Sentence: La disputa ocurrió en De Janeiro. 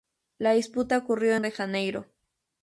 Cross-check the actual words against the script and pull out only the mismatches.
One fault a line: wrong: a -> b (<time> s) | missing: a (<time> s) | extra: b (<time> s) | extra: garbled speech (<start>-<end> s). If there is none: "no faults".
no faults